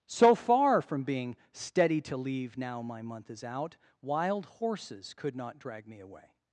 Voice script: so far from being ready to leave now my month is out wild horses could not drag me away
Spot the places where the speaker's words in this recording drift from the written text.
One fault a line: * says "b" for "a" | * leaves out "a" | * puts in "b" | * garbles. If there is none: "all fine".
* says "steady" for "ready"